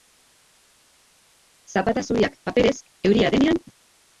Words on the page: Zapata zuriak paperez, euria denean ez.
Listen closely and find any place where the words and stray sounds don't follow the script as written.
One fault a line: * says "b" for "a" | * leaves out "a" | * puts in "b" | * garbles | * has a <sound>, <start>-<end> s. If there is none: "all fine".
all fine